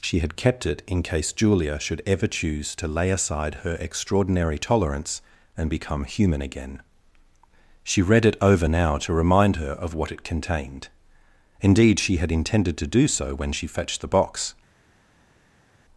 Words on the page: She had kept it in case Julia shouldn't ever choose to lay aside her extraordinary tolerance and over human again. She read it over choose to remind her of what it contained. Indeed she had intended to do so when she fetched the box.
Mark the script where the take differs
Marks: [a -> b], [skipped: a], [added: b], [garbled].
She had kept it in case Julia [shouldn't -> should] ever choose to lay aside her extraordinary tolerance and [over -> become] human again. She read it over [choose -> now] to remind her of what it contained. Indeed she had intended to do so when she fetched the box.